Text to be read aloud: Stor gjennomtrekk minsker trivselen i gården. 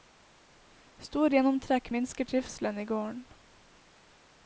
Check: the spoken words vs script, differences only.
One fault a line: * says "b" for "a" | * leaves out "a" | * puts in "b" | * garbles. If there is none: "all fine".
all fine